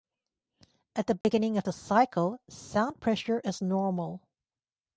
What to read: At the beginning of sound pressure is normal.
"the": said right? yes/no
yes